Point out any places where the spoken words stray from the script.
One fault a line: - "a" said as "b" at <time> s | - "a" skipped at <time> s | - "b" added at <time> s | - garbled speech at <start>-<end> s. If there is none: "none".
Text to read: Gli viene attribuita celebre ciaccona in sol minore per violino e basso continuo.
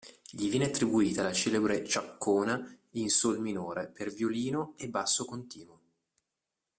- "la" added at 1.2 s